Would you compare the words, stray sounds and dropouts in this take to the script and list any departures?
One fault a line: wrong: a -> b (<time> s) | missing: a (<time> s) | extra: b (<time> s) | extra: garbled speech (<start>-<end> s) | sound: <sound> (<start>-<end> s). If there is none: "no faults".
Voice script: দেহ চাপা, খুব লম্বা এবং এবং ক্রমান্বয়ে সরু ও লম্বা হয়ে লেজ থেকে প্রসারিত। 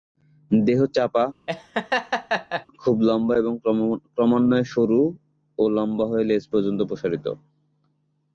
sound: laugh (1.5-2.7 s)
missing: এবং (3.5 s)
wrong: থেকে -> পর্যন্ত (6.5 s)